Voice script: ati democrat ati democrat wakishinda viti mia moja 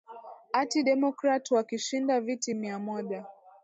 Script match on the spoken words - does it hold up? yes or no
no